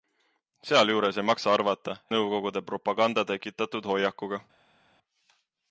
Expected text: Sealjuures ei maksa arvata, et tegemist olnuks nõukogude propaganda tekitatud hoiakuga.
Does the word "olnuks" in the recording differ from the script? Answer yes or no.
yes